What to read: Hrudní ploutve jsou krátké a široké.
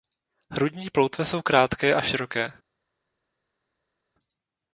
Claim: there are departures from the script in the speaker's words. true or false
false